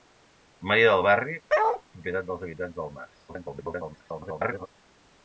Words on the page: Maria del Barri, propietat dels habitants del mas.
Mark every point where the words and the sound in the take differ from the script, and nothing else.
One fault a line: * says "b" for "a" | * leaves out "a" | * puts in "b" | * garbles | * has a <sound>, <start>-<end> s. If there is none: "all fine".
* has a bark, 1.5-1.8 s
* garbles